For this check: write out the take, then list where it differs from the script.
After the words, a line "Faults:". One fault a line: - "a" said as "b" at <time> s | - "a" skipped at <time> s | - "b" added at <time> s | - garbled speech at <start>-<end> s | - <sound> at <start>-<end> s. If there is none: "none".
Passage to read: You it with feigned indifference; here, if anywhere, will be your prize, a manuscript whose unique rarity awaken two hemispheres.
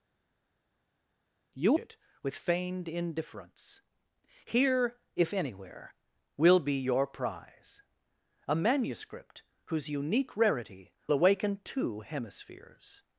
You it with feigned indifference; here, if anywhere, will be your prize, a manuscript whose unique rarity awaken two hemispheres.
Faults:
none